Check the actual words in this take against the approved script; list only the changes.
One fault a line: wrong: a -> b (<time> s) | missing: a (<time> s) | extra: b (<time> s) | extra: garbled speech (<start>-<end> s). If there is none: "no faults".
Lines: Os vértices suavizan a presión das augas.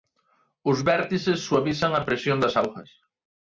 no faults